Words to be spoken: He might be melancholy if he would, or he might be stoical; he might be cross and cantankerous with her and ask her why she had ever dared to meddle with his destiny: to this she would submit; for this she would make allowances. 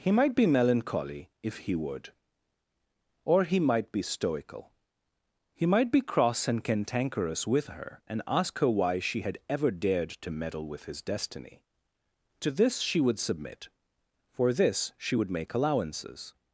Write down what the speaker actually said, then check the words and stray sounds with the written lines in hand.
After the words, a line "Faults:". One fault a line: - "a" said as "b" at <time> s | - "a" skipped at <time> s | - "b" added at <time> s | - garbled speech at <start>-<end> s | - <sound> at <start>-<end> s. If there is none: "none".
He might be melancholy if he would, or he might be stoical; he might be cross and cantankerous with her and ask her why she had ever dared to meddle with his destiny: to this she would submit; for this she would make allowances.
Faults:
none